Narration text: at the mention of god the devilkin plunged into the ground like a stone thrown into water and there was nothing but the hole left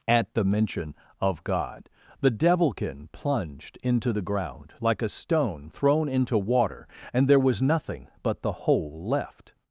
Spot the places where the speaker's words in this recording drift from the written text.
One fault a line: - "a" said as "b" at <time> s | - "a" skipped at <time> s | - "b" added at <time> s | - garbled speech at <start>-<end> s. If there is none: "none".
none